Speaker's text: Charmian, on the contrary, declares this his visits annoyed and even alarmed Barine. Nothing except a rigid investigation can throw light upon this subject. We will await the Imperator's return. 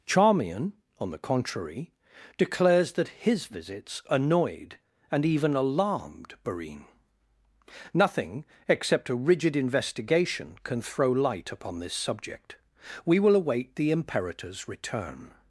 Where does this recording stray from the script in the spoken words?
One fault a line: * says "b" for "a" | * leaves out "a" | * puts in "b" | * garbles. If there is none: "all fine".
* says "that" for "this"